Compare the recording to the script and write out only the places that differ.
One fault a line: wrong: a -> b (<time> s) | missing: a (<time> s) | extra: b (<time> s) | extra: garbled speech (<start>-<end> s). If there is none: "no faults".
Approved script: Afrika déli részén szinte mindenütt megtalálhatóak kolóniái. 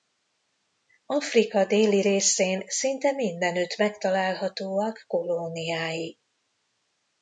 no faults